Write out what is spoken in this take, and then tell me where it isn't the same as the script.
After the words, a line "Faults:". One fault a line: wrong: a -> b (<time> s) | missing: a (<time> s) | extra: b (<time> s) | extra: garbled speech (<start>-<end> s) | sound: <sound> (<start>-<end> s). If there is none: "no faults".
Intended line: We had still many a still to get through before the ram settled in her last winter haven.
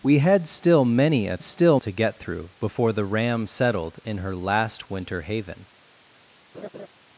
We had still many a still to get through before the ram settled in her last winter haven.
Faults:
sound: laugh (6.5-6.9 s)